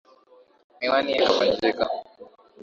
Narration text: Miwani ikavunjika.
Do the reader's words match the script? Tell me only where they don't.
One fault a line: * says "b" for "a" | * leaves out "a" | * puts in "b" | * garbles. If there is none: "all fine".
all fine